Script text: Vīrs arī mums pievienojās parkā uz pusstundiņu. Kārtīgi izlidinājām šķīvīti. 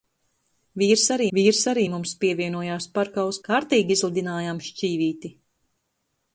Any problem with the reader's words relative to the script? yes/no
yes